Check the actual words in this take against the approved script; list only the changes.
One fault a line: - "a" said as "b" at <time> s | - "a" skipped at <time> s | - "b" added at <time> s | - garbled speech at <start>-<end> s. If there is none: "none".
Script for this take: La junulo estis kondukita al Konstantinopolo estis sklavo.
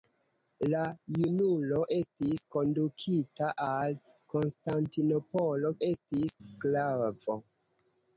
none